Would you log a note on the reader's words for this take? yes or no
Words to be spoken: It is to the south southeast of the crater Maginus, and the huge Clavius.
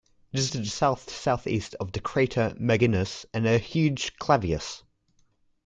no